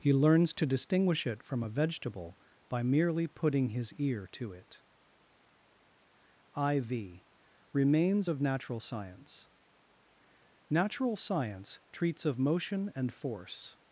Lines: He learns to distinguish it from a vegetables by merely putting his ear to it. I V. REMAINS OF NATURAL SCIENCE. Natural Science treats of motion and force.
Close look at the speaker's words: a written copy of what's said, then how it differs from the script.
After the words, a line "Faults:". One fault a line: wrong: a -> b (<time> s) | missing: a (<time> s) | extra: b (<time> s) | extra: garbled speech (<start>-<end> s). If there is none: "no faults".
He learns to distinguish it from a vegetable by merely putting his ear to it. I V. REMAINS OF NATURAL SCIENCE. Natural Science treats of motion and force.
Faults:
wrong: vegetables -> vegetable (1.7 s)